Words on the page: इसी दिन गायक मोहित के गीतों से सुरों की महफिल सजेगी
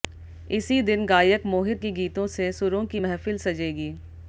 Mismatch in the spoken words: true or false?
false